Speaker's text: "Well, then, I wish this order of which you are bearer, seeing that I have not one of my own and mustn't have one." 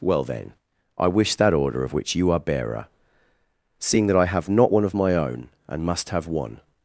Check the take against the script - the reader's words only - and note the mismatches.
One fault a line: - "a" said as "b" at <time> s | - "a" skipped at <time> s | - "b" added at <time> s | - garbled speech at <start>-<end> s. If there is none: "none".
- "this" said as "that" at 1.4 s
- "mustn't" said as "must" at 5.8 s